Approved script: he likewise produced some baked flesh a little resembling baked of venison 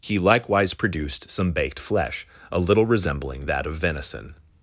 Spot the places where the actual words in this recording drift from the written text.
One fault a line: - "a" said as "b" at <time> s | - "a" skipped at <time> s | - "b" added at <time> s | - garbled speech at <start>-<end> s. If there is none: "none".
- "baked" said as "that" at 3.4 s